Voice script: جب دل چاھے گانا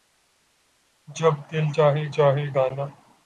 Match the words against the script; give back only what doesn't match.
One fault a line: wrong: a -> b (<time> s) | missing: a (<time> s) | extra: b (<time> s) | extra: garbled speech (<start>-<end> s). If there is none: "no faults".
extra: چاھے (2.1 s)